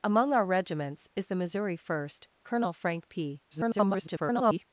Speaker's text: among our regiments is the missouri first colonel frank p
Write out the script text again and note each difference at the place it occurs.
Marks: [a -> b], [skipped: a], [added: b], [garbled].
among our regiments is the missouri first colonel frank p [garbled]